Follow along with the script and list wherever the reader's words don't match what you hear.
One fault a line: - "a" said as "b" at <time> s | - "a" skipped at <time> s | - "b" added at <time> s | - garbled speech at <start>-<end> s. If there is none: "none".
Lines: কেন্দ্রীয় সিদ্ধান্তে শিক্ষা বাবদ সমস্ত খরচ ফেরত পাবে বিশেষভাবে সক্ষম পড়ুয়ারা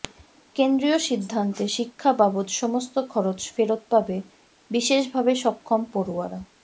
none